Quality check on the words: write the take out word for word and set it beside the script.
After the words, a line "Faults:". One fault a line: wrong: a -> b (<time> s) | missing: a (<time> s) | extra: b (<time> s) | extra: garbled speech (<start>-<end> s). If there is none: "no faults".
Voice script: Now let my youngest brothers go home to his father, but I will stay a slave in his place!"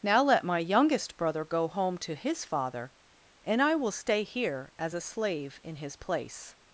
Now let my youngest brother go home to his father, and I will stay here as a slave in his place!"
Faults:
wrong: brothers -> brother (1.2 s)
wrong: but -> and (3.4 s)
extra: here as (4.2 s)